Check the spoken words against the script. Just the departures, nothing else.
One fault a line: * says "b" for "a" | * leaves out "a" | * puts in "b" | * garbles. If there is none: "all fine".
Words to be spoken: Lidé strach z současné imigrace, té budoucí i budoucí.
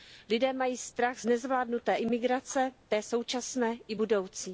* puts in "mají"
* says "nezvládnuté" for "současné"
* says "současné" for "budoucí"